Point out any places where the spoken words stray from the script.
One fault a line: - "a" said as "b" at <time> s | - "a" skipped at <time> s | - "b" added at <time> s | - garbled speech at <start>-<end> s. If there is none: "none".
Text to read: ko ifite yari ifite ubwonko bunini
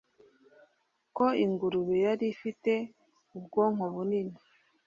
- "ifite" said as "ingurube" at 1.4 s